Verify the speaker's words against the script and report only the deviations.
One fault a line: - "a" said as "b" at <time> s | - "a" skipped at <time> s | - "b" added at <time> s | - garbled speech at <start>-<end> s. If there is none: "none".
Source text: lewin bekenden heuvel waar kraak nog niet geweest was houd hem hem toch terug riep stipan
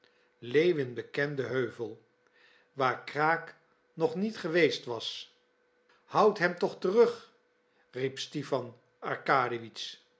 - "hem" skipped at 6.6 s